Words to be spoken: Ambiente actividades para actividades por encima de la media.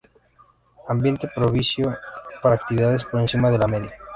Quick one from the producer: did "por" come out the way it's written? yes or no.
yes